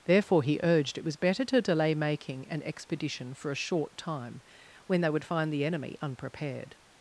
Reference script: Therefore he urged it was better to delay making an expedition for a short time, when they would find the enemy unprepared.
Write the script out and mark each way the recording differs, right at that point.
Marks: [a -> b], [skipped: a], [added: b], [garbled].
Therefore he urged it was better to delay making an expedition for a short time, when they would find the enemy unprepared.